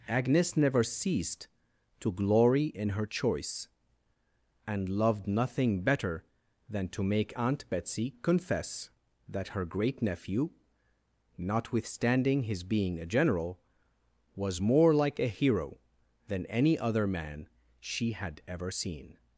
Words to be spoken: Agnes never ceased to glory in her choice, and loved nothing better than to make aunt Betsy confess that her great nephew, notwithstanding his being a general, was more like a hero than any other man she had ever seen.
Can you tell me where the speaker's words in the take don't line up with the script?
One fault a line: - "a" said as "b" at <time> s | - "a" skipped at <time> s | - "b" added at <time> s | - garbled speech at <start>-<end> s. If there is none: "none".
none